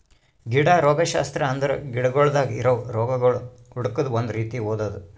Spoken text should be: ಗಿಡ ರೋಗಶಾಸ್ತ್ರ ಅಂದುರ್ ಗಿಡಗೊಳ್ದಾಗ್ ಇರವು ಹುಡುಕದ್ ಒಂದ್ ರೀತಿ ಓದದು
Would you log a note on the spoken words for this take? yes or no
yes